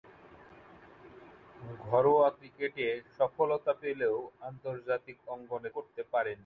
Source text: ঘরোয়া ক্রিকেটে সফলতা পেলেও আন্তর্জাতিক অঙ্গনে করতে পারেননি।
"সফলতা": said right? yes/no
yes